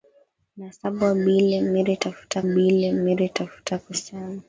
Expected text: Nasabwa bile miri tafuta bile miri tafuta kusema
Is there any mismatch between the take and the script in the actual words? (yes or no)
no